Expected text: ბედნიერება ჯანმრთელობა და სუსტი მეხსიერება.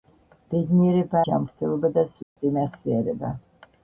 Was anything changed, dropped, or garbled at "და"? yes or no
no